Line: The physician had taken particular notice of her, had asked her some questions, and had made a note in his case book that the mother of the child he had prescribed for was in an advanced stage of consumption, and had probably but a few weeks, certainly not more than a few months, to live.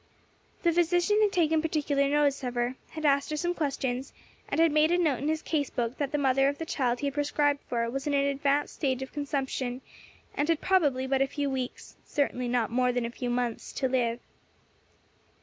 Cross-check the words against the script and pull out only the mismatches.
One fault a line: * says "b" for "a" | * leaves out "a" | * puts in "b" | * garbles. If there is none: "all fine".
all fine